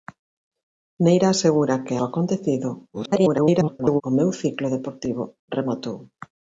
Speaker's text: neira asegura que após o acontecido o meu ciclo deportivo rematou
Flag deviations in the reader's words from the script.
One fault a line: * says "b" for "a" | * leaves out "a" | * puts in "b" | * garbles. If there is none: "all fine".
* leaves out "após"
* garbles